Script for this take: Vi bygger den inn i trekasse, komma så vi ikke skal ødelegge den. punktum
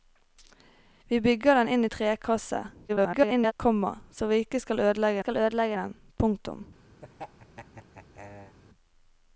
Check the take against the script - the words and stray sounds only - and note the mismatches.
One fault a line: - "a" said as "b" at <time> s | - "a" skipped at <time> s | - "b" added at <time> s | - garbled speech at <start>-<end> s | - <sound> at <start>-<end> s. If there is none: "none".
- garbled speech at 2.9-3.5 s
- "skal ødelegge" added at 5.2 s
- laugh at 7.0-8.6 s